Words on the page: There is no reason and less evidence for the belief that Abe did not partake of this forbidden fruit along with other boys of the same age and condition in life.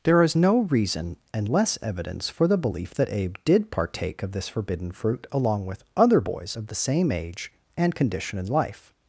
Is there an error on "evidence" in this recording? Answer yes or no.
no